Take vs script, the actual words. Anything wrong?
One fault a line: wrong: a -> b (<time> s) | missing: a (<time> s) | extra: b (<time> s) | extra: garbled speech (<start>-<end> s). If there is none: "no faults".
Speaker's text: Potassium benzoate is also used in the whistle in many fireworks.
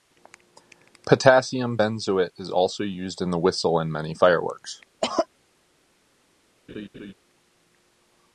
no faults